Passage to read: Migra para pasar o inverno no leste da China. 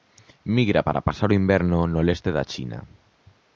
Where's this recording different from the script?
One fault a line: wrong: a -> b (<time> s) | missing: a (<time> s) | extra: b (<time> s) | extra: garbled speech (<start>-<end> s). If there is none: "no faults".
no faults